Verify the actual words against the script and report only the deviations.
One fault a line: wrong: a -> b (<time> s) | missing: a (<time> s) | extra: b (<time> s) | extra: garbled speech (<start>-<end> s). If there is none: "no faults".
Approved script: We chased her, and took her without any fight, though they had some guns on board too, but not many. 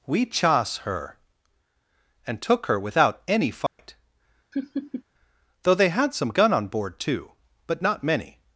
wrong: chased -> chas (0.2 s)
wrong: guns -> gun (6.3 s)